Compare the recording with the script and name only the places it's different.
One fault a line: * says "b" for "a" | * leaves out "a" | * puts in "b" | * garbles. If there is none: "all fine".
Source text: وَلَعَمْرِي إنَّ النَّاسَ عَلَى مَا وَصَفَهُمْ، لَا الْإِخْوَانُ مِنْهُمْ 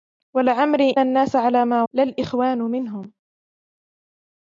* leaves out "إنَّ"
* leaves out "وَصَفَهُمْ"